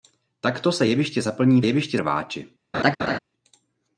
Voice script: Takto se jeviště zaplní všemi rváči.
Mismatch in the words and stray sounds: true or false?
true